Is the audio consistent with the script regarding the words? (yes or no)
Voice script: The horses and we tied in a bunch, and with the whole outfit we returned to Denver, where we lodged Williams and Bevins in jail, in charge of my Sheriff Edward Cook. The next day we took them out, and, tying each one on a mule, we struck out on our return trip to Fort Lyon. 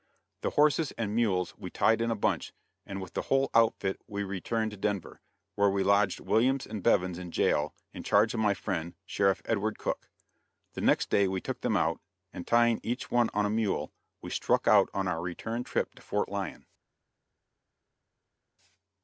no